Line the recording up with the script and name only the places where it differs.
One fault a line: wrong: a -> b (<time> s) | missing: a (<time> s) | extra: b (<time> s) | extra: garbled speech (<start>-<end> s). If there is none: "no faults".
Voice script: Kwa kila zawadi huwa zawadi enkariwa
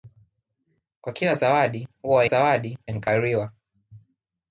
no faults